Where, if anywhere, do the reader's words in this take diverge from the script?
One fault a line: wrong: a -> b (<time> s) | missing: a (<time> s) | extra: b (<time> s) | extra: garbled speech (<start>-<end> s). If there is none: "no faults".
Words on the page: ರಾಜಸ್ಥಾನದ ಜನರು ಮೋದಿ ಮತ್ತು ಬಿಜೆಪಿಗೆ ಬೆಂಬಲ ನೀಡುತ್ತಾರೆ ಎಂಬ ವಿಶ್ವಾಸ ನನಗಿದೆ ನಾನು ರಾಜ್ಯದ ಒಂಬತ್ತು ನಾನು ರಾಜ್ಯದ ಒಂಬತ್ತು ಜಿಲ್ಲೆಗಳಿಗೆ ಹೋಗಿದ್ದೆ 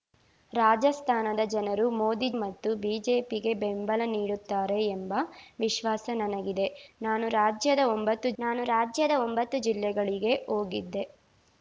no faults